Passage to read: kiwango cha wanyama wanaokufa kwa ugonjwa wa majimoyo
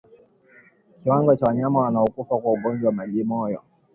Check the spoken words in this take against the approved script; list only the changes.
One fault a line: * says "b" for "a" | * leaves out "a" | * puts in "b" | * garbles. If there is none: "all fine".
all fine